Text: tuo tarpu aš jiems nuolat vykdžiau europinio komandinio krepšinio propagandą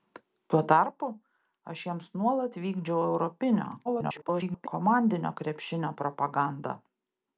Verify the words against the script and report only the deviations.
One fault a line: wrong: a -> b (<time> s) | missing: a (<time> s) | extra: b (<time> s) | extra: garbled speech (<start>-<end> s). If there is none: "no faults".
extra: garbled speech (3.8-4.7 s)